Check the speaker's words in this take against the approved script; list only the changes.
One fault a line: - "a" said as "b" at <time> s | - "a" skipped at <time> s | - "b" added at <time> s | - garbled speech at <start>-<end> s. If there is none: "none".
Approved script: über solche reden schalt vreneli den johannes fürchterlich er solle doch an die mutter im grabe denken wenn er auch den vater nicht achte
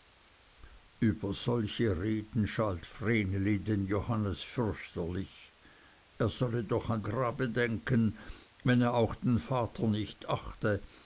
- "die mutter im" skipped at 7.0 s